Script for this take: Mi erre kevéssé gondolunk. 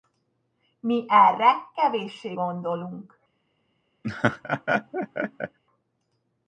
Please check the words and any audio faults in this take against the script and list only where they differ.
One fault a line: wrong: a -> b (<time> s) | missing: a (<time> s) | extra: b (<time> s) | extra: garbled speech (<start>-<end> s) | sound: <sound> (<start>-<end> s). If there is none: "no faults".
sound: laugh (4.0-5.6 s)